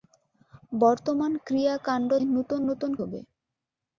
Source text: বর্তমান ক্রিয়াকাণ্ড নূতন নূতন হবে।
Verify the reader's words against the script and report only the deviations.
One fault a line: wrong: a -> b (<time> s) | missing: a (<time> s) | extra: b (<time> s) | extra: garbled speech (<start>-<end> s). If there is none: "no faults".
no faults